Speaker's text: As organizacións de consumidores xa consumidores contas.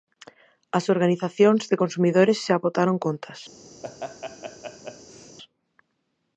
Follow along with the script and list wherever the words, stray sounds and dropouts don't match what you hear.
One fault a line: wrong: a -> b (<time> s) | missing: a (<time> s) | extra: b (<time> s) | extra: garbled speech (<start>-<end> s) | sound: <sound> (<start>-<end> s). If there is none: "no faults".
wrong: consumidores -> botaron (2.6 s)
sound: laugh (3.8-5.4 s)